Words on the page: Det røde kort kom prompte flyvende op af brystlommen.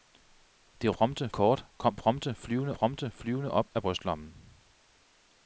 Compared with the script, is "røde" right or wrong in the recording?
wrong